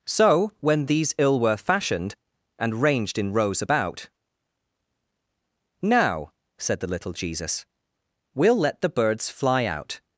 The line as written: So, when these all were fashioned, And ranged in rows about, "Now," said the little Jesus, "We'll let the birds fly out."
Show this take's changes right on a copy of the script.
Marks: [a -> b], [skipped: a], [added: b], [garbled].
So, when these [all -> ill] were fashioned, And ranged in rows about, "Now," said the little Jesus, "We'll let the birds fly out."